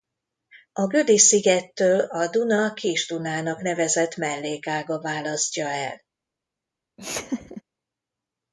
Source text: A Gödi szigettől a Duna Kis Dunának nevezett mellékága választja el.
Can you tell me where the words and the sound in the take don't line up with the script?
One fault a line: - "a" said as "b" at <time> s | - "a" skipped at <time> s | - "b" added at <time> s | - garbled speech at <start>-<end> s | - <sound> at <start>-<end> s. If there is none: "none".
- laugh at 7.0-7.6 s